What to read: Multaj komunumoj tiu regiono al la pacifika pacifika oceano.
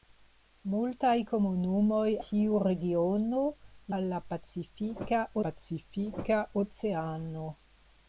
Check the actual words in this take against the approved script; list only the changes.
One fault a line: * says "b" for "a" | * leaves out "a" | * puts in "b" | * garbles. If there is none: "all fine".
all fine